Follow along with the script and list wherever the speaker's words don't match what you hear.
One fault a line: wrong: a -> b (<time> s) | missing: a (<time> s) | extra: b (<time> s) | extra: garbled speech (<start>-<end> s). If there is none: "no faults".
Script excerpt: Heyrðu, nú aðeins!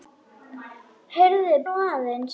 no faults